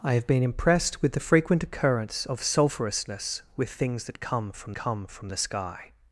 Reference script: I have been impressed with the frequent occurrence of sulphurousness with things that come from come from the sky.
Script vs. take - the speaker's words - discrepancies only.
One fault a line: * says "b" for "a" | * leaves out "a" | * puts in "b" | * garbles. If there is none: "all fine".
all fine